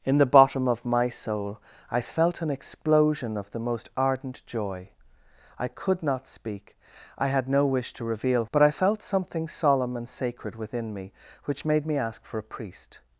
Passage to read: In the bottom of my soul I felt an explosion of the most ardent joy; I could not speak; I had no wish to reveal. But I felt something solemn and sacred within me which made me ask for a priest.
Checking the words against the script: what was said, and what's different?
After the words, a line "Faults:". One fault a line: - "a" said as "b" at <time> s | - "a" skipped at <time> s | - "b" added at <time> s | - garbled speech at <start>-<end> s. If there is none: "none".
In the bottom of my soul I felt an explosion of the most ardent joy; I could not speak; I had no wish to reveal. But I felt something solemn and sacred within me which made me ask for a priest.
Faults:
none